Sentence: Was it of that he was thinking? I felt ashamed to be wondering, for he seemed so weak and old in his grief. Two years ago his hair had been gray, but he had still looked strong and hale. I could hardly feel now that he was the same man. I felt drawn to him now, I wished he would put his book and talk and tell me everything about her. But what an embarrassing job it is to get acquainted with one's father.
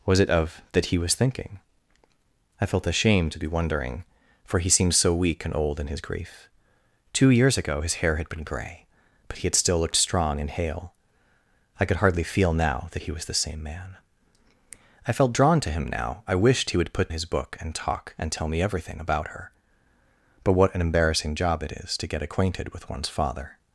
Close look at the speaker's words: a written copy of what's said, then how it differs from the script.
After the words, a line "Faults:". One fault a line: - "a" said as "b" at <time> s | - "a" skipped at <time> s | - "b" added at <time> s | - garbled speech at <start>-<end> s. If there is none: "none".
Was it of that he was thinking? I felt ashamed to be wondering, for he seemed so weak and old in his grief. Two years ago his hair had been gray, but he had still looked strong and hale. I could hardly feel now that he was the same man. I felt drawn to him now, I wished he would put his book and talk and tell me everything about her. But what an embarrassing job it is to get acquainted with one's father.
Faults:
none